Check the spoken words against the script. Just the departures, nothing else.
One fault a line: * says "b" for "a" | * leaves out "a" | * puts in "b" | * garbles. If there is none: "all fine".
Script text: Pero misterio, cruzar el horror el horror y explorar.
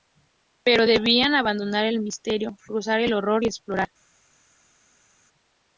* says "debían abandonar" for "misterio cruzar"
* says "misterio cruzar" for "horror"